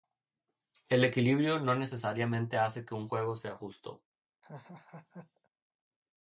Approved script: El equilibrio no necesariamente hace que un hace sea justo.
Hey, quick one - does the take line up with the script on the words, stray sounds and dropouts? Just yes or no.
no